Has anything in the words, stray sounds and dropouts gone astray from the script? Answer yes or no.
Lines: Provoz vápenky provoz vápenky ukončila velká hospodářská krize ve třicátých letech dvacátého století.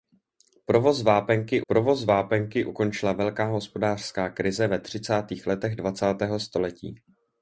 no